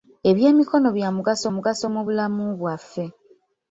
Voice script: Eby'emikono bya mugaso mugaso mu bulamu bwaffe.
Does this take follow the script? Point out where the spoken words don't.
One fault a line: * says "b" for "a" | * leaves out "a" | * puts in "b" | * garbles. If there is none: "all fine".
all fine